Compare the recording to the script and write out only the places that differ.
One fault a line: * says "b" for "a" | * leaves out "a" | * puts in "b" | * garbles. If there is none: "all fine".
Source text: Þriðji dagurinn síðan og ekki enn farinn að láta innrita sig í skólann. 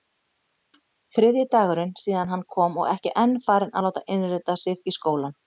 * puts in "hann kom"